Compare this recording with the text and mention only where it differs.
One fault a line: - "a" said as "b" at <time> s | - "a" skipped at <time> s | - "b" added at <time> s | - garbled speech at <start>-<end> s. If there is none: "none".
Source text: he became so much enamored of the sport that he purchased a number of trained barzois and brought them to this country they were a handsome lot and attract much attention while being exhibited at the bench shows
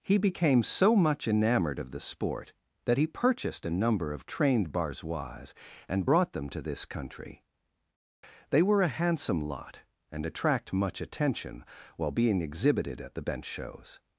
none